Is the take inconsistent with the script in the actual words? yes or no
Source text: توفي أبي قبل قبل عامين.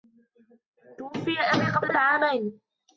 no